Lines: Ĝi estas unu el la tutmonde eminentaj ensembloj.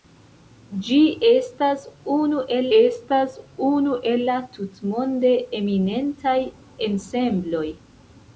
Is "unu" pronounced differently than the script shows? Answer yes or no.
no